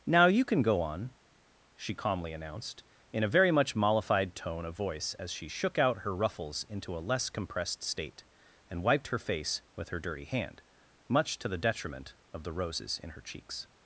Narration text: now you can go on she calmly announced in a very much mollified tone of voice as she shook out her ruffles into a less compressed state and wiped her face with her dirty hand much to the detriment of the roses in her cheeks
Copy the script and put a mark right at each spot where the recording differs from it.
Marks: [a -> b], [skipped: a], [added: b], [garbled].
now you can go on she calmly announced in a very much mollified tone of voice as she shook out her ruffles into a less compressed state and wiped her face with her dirty hand much to the detriment of the roses in her cheeks